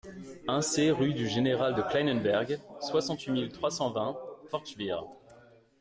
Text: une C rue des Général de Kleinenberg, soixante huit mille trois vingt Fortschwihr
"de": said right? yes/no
yes